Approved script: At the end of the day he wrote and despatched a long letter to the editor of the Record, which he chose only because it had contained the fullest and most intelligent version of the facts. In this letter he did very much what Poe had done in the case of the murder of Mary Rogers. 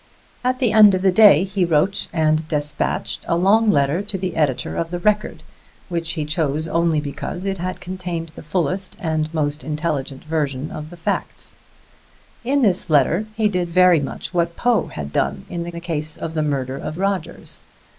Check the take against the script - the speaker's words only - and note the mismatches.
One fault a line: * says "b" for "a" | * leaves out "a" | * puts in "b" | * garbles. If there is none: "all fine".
* puts in "the"
* leaves out "Mary"